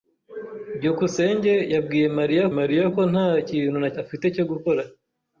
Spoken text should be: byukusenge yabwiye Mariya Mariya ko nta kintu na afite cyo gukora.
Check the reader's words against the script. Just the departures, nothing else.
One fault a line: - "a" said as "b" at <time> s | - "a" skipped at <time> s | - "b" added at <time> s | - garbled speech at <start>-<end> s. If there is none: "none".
none